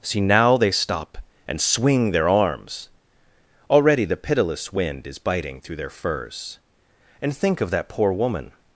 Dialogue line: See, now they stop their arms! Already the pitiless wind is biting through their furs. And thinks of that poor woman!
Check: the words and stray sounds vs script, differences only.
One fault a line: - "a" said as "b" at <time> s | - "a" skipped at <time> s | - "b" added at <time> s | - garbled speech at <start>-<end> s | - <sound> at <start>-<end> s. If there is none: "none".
- "and swing" added at 1.5 s
- "thinks" said as "think" at 7.3 s